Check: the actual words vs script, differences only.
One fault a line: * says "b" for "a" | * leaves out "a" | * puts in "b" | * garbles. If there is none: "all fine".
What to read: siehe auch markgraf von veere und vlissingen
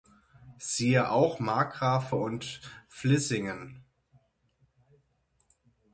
* leaves out "von veere"